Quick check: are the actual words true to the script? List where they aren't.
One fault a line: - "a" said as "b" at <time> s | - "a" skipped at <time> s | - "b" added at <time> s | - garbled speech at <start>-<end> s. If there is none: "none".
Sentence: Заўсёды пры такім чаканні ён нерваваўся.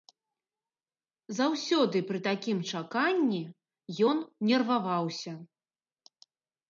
none